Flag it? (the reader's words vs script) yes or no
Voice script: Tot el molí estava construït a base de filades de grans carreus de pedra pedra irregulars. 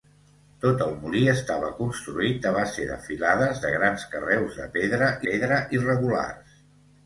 no